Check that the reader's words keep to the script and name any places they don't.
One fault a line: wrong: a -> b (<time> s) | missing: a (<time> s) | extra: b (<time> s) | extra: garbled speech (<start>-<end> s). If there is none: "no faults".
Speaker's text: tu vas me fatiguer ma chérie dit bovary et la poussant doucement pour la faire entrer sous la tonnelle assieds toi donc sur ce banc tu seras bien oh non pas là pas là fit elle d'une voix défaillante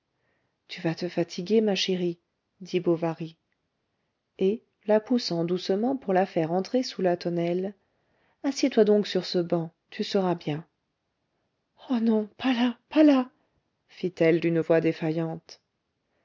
wrong: me -> te (0.9 s)